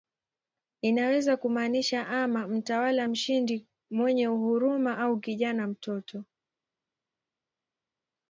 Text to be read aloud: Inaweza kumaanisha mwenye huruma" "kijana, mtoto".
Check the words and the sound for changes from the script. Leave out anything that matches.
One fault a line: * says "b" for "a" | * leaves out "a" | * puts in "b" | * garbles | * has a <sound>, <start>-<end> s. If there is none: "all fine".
* puts in "ama mtawala mshindi"
* puts in "au"